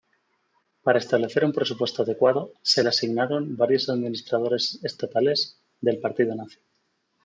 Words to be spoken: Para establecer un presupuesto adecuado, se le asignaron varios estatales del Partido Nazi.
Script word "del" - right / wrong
right